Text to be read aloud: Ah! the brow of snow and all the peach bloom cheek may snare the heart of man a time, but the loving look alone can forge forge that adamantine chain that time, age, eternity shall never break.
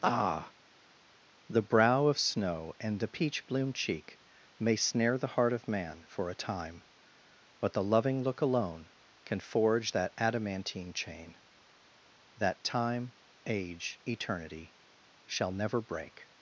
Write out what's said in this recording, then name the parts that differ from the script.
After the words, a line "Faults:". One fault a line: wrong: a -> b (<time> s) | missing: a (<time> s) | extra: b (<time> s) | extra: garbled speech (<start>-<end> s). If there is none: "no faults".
Ah! the brow of snow and the peach bloom cheek may snare the heart of man for a time, but the loving look alone can forge that adamantine chain that time, age, eternity shall never break.
Faults:
missing: all (3.0 s)
extra: for (6.1 s)
missing: forge (9.9 s)